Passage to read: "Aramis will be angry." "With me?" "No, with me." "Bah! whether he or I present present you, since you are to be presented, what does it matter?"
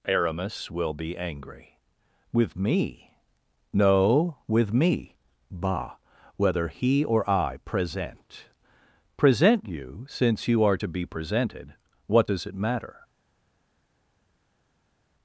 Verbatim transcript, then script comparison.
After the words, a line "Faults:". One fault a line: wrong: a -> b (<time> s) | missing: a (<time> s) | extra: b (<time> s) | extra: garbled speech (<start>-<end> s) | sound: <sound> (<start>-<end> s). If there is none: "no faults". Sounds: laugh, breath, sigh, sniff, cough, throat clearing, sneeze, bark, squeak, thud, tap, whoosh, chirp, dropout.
"Aramis will be angry." "With me?" "No, with me." "Bah! whether he or I present present you, since you are to be presented, what does it matter?"
Faults:
no faults